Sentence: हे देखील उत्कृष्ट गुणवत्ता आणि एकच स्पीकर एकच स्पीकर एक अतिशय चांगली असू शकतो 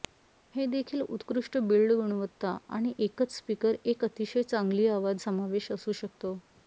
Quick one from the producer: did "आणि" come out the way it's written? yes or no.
yes